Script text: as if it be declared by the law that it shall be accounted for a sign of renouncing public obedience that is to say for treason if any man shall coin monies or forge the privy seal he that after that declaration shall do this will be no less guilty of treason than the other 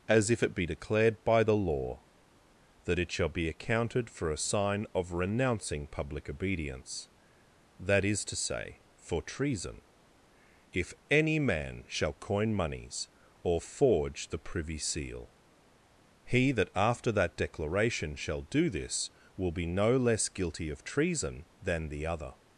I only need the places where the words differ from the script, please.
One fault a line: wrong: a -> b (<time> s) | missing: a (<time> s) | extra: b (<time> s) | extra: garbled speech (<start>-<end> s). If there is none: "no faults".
no faults